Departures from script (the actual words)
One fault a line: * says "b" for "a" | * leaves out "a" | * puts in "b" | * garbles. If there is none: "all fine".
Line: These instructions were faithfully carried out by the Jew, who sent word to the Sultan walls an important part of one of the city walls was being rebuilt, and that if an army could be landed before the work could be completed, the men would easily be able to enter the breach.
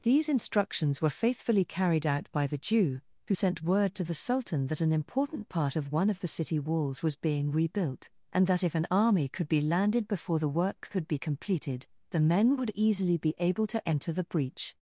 * says "that" for "walls"